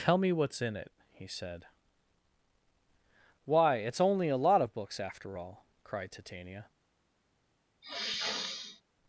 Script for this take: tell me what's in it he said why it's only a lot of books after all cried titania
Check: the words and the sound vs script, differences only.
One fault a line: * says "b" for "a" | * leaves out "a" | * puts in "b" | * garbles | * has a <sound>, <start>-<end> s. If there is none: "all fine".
* has a sniff, 7.8-8.8 s